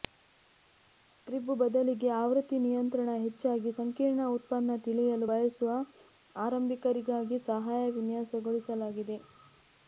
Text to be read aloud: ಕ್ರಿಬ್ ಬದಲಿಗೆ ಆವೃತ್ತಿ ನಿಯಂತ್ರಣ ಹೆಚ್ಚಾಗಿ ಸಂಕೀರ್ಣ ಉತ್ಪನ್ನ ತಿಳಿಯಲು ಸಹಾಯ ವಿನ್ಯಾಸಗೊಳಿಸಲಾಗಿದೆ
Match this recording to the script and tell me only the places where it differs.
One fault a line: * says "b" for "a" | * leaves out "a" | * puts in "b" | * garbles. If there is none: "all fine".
* puts in "ಬಯಸುವ ಆರಂಭಿಕರಿಗಾಗಿ"